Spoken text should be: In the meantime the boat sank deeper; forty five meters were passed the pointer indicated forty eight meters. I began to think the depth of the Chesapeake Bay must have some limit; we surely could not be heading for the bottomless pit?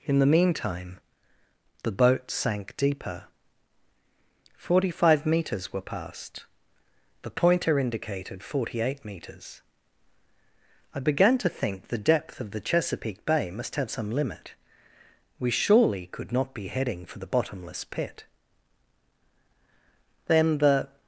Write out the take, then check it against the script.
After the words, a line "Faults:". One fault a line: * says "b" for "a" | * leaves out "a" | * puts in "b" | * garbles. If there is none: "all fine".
In the meantime the boat sank deeper; forty five meters were passed the pointer indicated forty eight meters. I began to think the depth of the Chesapeake Bay must have some limit; we surely could not be heading for the bottomless pit? Then the
Faults:
* puts in "Then the"